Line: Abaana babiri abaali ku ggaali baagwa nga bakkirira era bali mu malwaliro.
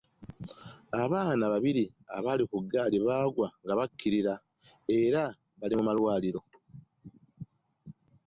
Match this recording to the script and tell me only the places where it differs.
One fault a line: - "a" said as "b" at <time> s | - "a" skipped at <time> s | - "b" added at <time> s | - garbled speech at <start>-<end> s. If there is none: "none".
none